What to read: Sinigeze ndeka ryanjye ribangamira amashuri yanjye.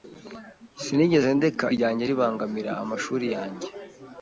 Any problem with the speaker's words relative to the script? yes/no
no